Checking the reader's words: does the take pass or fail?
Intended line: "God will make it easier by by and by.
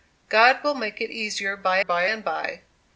pass